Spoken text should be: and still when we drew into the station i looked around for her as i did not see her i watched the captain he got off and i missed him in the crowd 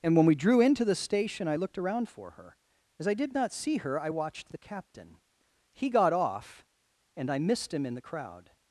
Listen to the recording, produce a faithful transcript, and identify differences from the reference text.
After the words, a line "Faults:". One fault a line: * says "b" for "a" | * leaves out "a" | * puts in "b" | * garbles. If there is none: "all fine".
and when we drew into the station i looked around for her as i did not see her i watched the captain he got off and i missed him in the crowd
Faults:
* leaves out "still"